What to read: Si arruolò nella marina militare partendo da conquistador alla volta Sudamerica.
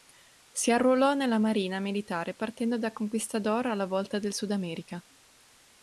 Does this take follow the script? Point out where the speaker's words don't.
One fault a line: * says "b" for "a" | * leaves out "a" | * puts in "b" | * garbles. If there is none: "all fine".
* puts in "del"